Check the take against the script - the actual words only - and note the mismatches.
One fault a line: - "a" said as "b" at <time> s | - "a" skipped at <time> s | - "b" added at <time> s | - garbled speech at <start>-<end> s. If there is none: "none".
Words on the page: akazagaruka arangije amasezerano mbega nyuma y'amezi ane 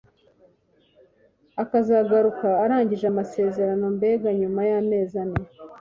none